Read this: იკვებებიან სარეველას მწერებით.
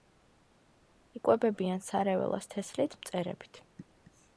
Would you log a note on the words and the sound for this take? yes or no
yes